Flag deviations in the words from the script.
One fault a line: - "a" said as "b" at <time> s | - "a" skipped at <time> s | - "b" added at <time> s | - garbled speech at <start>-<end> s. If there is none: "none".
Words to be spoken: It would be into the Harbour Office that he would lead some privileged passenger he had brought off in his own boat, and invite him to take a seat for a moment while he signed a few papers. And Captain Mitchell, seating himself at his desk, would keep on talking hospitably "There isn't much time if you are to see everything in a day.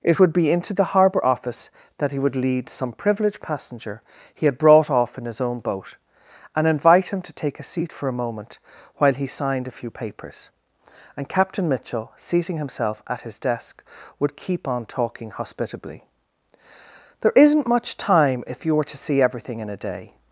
- "are" said as "were" at 18.8 s